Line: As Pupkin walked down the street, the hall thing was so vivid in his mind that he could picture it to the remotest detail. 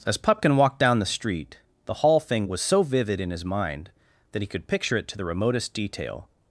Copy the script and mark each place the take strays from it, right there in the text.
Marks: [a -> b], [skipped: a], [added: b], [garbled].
As Pupkin walked down the street, the hall thing was so vivid in his mind that he could picture it to the remotest detail.